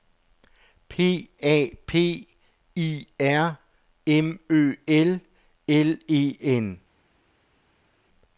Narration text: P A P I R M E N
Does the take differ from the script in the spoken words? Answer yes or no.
yes